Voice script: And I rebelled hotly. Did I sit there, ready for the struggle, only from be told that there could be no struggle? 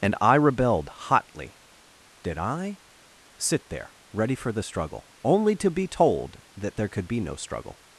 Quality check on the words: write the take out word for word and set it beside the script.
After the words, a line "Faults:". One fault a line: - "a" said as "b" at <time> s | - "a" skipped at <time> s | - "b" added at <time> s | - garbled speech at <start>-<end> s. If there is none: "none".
And I rebelled hotly. Did I sit there, ready for the struggle, only to be told that there could be no struggle?
Faults:
- "from" said as "to" at 5.6 s